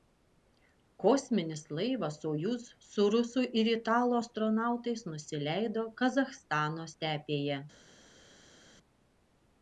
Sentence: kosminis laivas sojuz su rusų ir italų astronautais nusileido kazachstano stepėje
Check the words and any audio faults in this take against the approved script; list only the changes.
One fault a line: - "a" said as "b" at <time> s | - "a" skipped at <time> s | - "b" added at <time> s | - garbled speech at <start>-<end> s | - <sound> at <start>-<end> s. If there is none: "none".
none